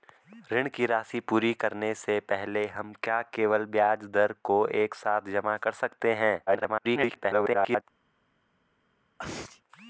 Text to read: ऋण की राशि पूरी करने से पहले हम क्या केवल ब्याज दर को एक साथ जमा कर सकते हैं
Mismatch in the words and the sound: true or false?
true